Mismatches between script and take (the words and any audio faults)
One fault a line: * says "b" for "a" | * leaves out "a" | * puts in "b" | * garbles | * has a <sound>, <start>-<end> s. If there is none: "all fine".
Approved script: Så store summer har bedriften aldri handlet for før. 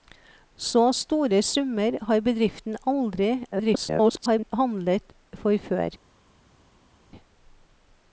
* garbles